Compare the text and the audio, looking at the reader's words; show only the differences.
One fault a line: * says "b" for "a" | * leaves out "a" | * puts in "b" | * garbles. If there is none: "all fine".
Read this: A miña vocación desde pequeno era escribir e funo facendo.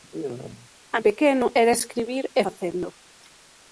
* leaves out "miña vocación desde"
* leaves out "funo"